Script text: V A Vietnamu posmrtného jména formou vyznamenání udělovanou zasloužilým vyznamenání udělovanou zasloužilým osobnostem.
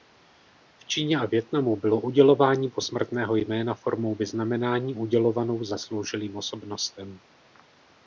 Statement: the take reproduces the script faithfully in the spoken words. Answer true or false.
false